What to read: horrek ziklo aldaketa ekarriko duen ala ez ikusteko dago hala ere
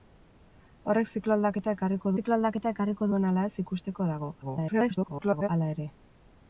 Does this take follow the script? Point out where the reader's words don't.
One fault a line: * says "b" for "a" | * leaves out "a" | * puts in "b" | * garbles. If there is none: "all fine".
* puts in "ziklo aldaketa ekarriko"
* garbles